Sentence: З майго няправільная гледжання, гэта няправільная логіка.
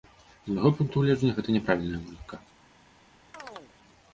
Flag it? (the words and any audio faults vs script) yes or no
yes